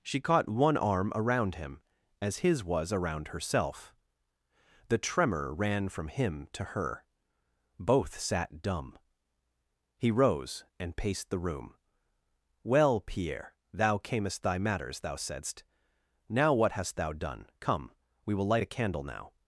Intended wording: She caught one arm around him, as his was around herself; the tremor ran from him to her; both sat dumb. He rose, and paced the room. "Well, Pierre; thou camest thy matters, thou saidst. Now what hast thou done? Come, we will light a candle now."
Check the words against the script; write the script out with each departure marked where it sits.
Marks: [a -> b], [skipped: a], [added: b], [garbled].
She caught one arm around him, as his was around herself; the tremor ran from him to her; both sat dumb. He rose, and paced the room. "Well, Pierre; thou camest thy matters, thou saidst. Now what hast thou done? Come, we will light a candle now."